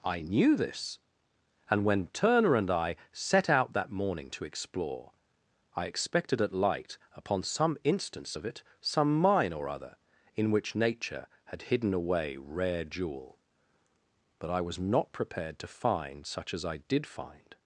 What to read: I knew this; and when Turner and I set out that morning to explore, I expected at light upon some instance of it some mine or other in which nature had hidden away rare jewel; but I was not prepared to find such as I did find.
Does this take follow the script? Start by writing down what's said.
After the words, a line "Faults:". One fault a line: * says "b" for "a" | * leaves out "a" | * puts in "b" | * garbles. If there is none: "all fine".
I knew this; and when Turner and I set out that morning to explore, I expected at light upon some instance of it some mine or other in which nature had hidden away rare jewel; but I was not prepared to find such as I did find.
Faults:
all fine